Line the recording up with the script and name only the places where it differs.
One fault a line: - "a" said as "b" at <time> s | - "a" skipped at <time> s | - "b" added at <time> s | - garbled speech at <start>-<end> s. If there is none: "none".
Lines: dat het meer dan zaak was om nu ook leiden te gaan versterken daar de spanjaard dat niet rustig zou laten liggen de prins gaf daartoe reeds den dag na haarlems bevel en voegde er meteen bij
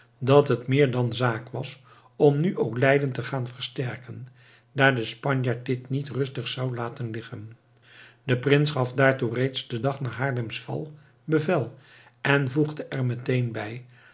- "dat" said as "dit" at 5.7 s
- "val" added at 10.6 s